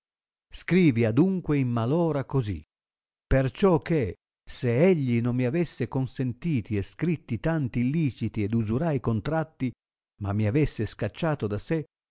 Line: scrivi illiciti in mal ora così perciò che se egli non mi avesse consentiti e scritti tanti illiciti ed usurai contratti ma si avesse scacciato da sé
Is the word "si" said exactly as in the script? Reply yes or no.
no